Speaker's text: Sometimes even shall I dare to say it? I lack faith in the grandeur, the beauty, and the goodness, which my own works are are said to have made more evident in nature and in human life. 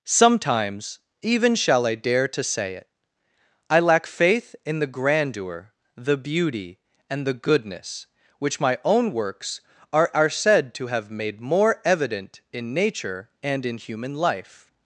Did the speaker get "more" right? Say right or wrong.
right